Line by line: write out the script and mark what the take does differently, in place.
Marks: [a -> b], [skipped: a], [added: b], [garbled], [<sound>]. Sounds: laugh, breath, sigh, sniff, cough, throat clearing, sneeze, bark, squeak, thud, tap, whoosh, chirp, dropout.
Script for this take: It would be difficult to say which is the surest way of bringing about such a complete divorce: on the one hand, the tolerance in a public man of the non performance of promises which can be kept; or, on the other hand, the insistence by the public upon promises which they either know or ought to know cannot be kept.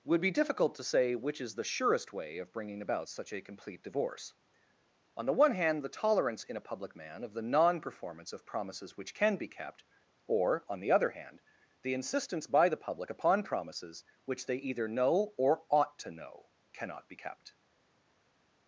[skipped: It] would be difficult to say which is the surest way of bringing about such a complete divorce: on the one hand, the tolerance in a public man of the non performance of promises which can be kept; or, on the other hand, the insistence by the public upon promises which they either know or ought to know cannot be kept.